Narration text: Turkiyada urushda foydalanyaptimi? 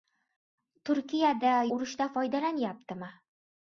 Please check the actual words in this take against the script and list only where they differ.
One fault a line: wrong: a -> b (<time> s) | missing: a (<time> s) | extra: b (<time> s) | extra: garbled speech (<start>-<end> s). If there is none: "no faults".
no faults